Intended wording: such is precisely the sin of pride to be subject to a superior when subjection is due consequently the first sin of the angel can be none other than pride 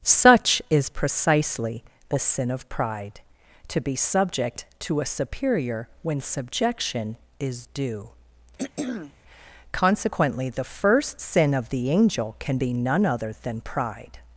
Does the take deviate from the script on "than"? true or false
false